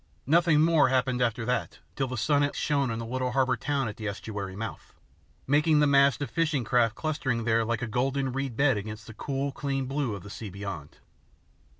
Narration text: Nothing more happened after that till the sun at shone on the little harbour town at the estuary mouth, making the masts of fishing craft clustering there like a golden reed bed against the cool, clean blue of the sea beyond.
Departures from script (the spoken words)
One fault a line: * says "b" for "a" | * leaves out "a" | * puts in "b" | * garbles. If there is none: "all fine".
all fine